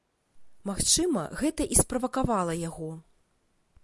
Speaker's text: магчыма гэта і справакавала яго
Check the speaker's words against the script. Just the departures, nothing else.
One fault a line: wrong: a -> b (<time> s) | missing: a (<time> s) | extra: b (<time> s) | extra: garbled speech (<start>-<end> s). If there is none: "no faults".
no faults